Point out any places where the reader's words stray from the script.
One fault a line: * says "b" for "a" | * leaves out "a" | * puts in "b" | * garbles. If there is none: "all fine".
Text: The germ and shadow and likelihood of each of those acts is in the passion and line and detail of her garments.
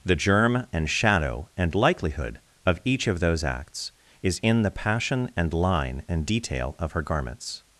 all fine